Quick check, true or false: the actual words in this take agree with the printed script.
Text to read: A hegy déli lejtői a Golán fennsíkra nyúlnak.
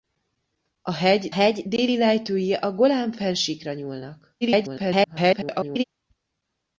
false